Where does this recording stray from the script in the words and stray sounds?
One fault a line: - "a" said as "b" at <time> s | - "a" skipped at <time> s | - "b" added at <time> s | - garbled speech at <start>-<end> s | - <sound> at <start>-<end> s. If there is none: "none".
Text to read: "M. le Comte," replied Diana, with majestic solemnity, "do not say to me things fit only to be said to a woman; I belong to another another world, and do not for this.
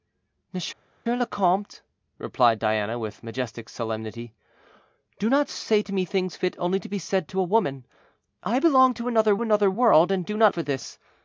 none